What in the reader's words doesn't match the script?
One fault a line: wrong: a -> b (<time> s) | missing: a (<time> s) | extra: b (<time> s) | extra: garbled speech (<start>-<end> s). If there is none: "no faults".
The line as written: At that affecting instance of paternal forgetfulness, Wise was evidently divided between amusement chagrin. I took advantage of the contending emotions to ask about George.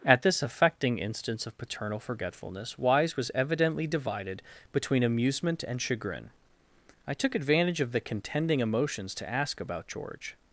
wrong: that -> this (0.2 s)
extra: and (5.6 s)